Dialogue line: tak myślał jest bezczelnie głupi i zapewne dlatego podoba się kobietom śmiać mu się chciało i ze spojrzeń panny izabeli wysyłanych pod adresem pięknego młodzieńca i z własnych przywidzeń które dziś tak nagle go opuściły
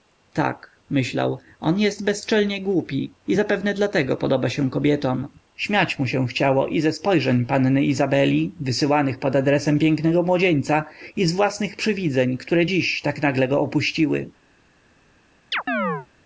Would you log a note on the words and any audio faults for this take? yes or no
yes